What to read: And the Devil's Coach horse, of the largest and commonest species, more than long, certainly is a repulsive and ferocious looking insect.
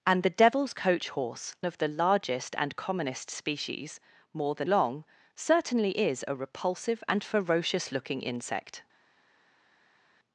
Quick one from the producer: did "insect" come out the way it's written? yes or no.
yes